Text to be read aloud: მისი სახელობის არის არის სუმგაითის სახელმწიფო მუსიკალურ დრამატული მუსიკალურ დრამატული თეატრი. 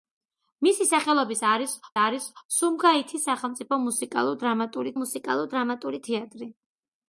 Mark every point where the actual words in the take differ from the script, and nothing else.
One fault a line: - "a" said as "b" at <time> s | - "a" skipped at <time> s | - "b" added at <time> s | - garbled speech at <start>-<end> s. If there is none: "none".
none